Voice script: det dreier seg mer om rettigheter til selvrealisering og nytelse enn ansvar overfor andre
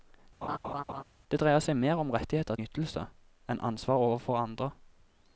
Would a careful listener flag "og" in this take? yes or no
yes